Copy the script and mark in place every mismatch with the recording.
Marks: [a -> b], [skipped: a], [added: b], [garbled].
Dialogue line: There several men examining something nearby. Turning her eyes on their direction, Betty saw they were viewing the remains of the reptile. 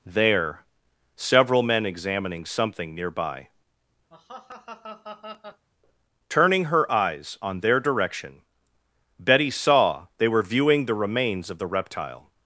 There several men examining something nearby. Turning her eyes on their direction, Betty saw they were viewing the remains of the reptile.